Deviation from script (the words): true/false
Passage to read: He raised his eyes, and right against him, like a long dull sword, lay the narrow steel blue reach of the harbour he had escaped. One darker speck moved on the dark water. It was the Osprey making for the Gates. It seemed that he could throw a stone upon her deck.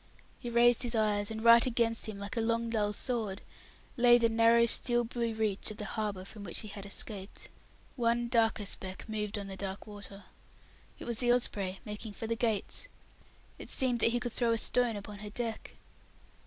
true